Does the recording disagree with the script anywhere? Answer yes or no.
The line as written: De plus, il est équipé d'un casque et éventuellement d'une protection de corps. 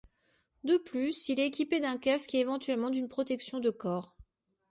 no